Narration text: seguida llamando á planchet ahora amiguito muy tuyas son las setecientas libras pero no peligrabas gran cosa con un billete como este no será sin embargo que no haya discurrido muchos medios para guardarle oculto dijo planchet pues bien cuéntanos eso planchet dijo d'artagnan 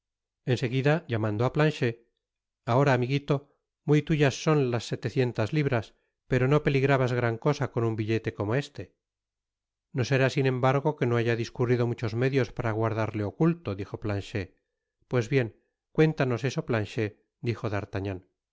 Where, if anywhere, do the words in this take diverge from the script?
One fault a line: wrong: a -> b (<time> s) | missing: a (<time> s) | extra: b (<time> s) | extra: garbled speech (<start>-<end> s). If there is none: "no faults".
no faults